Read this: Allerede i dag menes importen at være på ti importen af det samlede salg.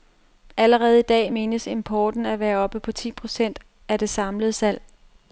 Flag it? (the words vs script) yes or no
yes